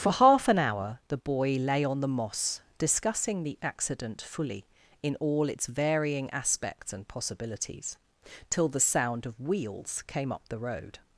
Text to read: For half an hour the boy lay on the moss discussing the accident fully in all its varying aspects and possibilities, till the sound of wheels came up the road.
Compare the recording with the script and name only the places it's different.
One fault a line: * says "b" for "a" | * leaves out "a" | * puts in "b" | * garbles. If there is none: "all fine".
all fine